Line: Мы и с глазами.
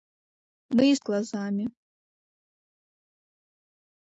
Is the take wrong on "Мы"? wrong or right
right